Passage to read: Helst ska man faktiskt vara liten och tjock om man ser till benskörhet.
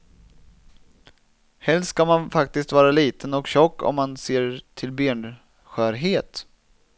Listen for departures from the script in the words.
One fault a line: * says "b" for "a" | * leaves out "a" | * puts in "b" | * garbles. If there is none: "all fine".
all fine